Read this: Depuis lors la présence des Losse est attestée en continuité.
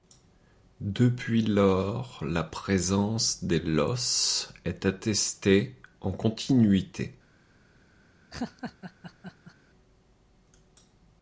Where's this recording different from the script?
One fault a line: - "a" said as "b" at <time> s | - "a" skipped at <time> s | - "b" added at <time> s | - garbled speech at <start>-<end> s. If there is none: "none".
none